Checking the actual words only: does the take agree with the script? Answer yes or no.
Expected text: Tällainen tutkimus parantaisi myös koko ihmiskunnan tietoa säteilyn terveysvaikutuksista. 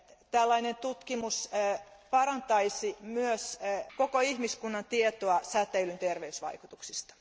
yes